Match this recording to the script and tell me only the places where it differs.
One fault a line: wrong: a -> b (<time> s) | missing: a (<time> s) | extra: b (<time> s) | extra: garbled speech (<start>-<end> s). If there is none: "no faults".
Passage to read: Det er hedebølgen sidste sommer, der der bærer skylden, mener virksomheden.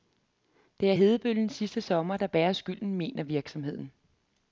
missing: der (2.3 s)